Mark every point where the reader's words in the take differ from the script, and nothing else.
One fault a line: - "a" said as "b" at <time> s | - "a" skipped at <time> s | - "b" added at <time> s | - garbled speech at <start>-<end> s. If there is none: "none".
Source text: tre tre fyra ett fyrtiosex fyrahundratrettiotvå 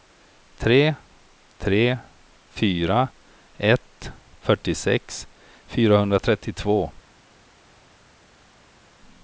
none